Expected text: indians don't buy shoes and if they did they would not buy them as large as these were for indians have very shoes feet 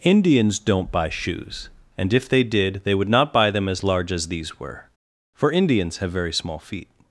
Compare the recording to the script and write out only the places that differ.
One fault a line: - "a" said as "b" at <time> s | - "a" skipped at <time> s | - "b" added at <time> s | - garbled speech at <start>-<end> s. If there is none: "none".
- "shoes" said as "small" at 6.3 s